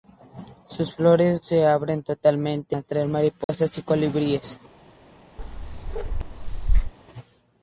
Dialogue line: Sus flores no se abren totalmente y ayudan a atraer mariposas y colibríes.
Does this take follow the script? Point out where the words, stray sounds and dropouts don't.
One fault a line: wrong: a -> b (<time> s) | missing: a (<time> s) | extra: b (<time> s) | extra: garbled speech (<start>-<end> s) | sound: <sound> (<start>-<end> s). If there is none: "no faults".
missing: no (1.4 s)
missing: y ayudan (2.8 s)
sound: dropout (3.4-3.5 s)
sound: bark (5.4-6.9 s)